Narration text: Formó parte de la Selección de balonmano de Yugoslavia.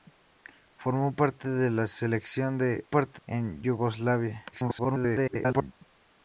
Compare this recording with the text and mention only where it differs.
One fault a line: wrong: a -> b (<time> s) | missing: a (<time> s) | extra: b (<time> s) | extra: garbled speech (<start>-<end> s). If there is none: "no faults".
wrong: balonmano -> parte (2.9 s)
extra: garbled speech (4.5-5.7 s)